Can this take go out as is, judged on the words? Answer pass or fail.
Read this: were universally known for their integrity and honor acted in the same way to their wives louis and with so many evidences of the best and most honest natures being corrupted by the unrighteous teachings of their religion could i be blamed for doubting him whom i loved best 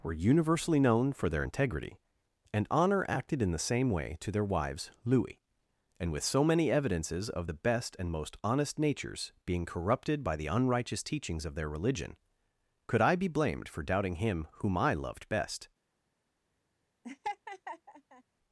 pass